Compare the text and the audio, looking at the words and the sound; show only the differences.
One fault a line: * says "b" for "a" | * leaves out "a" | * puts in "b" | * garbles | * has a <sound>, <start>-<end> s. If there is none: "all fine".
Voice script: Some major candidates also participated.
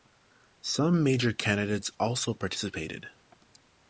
all fine